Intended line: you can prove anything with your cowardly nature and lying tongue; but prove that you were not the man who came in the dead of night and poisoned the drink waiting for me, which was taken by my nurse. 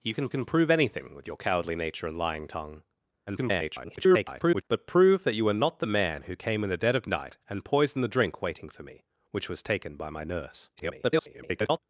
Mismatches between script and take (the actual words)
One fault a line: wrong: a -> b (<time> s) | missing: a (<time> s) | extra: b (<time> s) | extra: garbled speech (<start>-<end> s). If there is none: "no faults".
extra: can (0.3 s)
extra: garbled speech (3.3-4.6 s)
extra: garbled speech (10.8-11.8 s)